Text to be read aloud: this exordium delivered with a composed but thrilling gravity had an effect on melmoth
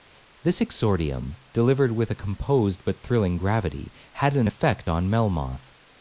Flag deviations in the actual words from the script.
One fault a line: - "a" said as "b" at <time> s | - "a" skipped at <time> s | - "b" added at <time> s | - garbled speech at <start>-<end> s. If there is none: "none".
none